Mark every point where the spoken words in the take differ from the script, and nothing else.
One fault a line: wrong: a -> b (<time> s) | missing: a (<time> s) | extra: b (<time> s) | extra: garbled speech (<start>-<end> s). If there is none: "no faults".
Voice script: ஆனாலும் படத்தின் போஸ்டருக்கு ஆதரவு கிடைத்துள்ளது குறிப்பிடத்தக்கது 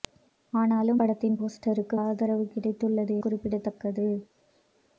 no faults